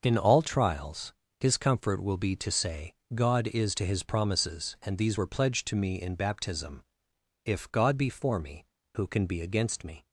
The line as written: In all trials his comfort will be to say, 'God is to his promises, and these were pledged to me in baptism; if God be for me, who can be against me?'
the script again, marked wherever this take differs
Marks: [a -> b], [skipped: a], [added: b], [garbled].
In all trials his comfort will be to say, 'God is to his promises, and these were pledged to me in baptism; if God be for me, who can be against me?'